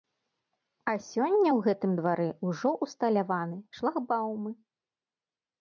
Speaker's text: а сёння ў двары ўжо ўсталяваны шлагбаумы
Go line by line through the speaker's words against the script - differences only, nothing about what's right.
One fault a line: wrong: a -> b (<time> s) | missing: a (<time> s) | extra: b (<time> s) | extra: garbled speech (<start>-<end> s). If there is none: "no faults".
extra: гэтым (1.7 s)